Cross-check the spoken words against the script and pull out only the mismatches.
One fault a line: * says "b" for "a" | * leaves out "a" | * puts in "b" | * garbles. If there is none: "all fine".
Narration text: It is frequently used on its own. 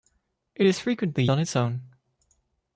* leaves out "used"